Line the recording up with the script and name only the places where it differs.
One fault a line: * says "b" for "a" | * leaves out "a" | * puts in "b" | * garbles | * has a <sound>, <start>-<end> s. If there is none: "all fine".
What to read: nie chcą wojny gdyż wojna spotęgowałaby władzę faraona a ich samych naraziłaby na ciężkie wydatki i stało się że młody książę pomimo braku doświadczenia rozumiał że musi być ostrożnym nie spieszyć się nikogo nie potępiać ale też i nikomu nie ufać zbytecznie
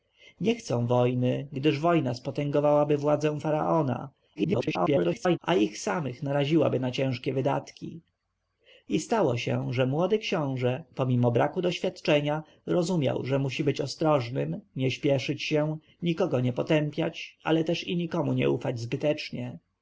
* garbles